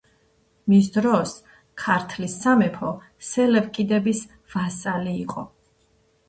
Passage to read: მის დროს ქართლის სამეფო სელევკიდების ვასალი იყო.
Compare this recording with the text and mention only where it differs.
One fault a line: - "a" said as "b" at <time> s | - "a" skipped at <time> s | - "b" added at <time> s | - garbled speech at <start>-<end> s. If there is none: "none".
none